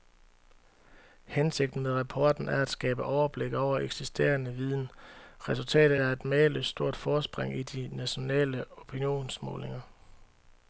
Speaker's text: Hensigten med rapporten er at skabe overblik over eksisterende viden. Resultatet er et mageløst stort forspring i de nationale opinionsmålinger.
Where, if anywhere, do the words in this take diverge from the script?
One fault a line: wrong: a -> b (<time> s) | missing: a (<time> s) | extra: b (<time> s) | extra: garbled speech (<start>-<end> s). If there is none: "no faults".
no faults